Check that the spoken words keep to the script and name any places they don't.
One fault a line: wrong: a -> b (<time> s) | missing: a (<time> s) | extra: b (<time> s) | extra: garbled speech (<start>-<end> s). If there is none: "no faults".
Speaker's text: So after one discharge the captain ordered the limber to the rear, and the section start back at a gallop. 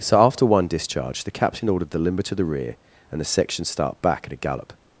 no faults